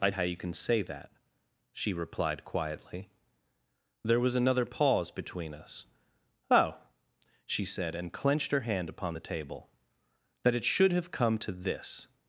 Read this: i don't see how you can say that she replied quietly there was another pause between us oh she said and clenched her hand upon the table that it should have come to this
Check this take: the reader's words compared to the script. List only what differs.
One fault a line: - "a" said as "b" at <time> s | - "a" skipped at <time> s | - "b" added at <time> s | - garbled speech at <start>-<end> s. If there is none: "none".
- "don't see" skipped at 0.1 s